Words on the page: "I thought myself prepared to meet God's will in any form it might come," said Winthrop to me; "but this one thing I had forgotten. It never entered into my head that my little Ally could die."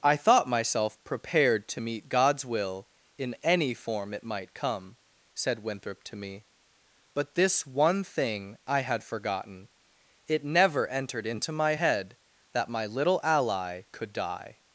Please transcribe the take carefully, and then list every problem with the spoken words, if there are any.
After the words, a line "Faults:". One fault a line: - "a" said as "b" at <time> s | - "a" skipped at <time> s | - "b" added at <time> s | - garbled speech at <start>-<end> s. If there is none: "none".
"I thought myself prepared to meet God's will in any form it might come," said Winthrop to me; "but this one thing I had forgotten. It never entered into my head that my little Ally could die."
Faults:
none